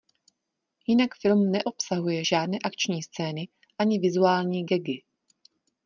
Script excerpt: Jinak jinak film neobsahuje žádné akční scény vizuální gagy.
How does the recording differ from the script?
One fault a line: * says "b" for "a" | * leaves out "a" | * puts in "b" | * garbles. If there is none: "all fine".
* leaves out "jinak"
* puts in "ani"